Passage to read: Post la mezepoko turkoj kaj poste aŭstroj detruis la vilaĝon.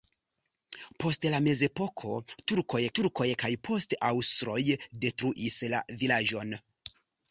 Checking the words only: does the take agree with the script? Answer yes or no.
no